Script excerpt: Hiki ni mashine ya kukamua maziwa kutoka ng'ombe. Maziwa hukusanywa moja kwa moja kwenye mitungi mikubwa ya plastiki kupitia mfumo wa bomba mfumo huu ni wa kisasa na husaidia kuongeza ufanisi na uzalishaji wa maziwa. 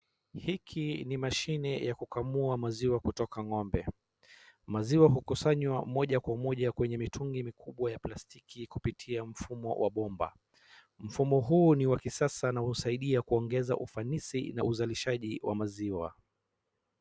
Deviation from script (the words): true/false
false